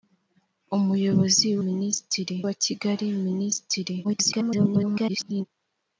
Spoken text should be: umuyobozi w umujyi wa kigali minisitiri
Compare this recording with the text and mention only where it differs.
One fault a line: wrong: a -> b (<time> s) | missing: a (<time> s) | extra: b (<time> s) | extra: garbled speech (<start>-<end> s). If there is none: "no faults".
wrong: umujyi -> minisitiri (1.7 s)
extra: garbled speech (4.0-5.5 s)